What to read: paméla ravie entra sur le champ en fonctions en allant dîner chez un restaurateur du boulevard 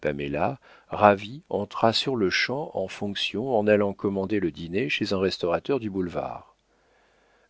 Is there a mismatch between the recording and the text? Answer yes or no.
yes